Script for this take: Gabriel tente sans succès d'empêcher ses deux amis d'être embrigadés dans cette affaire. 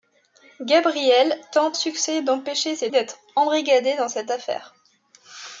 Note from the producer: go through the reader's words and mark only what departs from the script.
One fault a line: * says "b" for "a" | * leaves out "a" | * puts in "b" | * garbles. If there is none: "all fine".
* leaves out "sans"
* leaves out "deux amis"